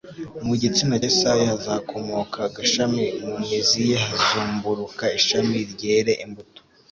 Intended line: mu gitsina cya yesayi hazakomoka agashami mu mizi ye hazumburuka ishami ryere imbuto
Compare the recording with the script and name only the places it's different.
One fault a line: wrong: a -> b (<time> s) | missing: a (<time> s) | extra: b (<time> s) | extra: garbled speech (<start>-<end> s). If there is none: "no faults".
missing: cya (1.0 s)